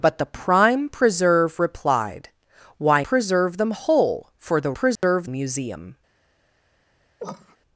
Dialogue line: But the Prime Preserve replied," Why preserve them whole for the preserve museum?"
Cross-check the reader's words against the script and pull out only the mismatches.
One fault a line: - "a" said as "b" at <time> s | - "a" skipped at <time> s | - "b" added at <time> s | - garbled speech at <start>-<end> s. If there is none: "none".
none